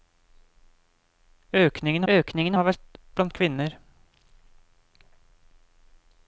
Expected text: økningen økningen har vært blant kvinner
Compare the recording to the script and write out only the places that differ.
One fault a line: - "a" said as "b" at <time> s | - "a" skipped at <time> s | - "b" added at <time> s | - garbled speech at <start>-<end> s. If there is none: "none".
none